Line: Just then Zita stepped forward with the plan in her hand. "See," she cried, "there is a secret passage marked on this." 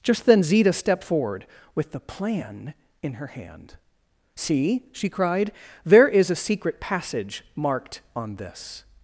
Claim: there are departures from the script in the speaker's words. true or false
false